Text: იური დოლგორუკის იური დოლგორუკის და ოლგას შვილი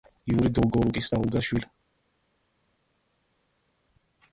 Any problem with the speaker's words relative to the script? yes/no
yes